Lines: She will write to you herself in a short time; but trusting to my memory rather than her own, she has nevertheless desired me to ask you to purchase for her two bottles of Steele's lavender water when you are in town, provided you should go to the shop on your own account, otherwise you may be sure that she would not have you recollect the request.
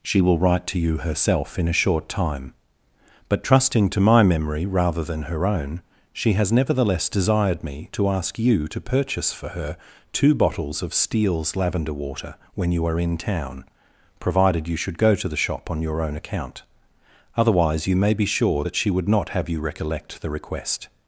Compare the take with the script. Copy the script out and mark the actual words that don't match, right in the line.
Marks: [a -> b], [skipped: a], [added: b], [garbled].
She will write to you herself in a short time; but trusting to my memory rather than her own, she has nevertheless desired me to ask you to purchase for her two bottles of Steele's lavender water when you are in town, provided you should go to the shop on your own account, otherwise you may be sure that she would not have you recollect the request.